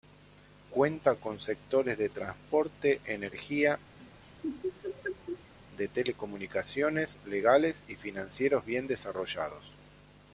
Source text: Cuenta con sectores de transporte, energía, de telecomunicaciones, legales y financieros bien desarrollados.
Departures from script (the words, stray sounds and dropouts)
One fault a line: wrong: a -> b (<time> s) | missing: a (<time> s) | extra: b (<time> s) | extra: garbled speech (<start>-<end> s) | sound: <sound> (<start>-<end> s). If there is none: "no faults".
sound: laugh (4.0-5.5 s)